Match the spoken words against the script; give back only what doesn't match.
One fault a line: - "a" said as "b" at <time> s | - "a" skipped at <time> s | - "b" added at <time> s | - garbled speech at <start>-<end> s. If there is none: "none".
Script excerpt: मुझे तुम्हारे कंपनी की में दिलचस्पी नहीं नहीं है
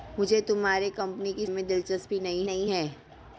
none